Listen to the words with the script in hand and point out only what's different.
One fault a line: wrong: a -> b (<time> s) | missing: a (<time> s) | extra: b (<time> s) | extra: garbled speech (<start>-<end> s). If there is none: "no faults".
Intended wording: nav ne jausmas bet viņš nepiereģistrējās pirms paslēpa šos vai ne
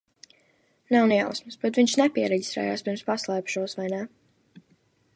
no faults